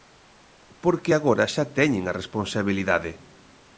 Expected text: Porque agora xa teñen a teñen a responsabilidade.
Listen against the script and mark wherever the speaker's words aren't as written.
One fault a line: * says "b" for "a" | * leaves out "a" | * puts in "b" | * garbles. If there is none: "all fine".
* leaves out "teñen a"